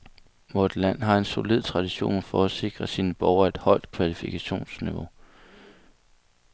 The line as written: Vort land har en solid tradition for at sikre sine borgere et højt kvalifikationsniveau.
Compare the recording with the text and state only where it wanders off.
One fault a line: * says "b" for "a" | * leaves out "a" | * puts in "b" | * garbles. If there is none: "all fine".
all fine